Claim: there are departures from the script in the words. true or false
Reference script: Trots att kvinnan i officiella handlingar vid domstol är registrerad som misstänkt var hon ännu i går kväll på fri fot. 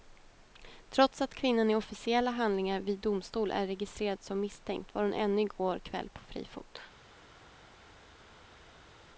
false